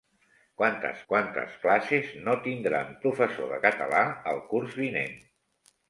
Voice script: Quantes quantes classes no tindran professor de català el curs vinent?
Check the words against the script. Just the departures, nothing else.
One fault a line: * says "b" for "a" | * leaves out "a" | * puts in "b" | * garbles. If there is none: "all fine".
all fine